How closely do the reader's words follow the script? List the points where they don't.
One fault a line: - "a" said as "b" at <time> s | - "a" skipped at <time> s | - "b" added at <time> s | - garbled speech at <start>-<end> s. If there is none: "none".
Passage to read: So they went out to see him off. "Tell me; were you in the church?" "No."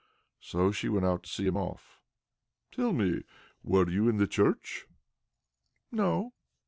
- "they" said as "she" at 0.7 s